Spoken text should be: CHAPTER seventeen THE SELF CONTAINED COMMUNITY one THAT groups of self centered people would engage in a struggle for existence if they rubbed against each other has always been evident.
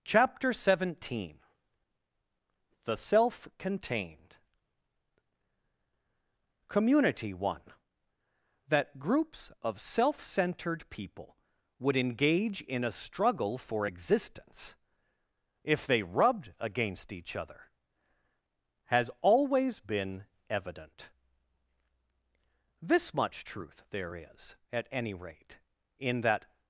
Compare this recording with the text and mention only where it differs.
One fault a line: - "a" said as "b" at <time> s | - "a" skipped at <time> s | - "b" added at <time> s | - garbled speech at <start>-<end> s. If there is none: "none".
- "This much truth there is at any rate in that" added at 22.8 s